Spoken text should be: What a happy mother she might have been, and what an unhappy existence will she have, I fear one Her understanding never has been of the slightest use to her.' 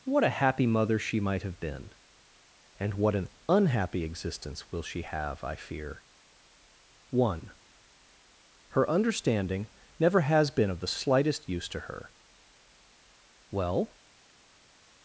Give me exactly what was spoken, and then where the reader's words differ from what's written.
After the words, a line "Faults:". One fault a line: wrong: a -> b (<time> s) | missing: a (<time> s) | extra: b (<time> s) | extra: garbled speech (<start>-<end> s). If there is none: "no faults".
What a happy mother she might have been, and what an unhappy existence will she have, I fear one Her understanding never has been of the slightest use to her.' Well
Faults:
extra: Well (13.5 s)